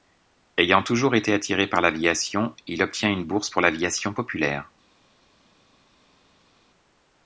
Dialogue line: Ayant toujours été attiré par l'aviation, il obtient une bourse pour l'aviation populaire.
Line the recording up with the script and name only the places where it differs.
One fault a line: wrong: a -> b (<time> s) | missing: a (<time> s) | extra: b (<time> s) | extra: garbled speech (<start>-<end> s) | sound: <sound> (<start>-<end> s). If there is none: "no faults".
no faults